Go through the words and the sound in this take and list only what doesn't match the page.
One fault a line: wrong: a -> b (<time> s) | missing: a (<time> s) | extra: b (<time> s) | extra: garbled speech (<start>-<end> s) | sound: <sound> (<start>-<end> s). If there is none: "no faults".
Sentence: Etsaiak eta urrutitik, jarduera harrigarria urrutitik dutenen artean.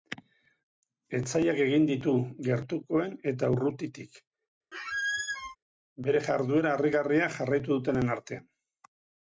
extra: egin ditu gertukoen (1.6 s)
sound: squeak (4.7-5.6 s)
extra: bere (6.1 s)
wrong: urrutitik -> jarraitu (7.4 s)